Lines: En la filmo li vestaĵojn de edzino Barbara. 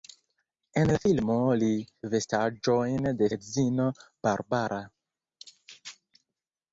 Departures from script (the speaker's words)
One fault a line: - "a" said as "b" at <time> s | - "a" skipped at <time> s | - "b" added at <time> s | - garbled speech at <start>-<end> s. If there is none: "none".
none